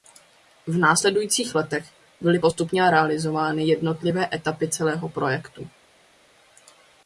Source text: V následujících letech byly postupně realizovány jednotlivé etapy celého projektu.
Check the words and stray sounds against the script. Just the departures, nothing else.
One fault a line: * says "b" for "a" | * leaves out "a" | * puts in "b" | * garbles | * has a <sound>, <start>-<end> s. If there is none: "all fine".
all fine